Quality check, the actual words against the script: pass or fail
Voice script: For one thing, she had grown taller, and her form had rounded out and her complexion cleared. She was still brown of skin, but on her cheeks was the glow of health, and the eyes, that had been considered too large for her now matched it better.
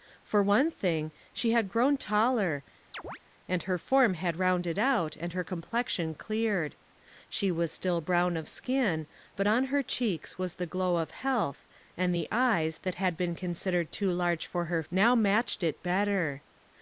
pass